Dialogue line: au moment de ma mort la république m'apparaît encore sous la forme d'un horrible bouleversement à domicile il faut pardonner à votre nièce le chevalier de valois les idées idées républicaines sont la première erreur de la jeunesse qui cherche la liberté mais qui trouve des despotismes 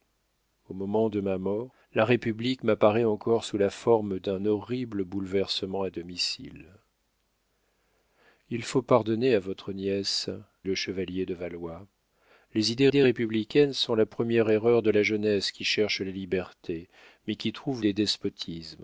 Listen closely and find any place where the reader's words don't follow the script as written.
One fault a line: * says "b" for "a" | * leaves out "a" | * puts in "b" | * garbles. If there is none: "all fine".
all fine